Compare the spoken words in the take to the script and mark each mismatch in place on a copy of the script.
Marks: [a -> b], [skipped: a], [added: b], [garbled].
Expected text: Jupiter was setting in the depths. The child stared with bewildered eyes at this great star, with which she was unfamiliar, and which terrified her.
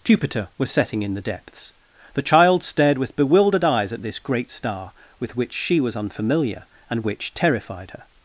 Jupiter was setting in the depths. The child stared with bewildered eyes at this great star, with which she was unfamiliar, and which terrified her.